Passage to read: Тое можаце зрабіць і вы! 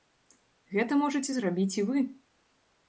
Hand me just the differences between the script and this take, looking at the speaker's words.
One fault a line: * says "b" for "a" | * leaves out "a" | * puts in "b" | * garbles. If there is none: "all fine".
* says "Гэта" for "Тое"